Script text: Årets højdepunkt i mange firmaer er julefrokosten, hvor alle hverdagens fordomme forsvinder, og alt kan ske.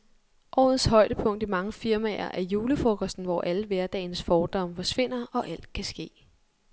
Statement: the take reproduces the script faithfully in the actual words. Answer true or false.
true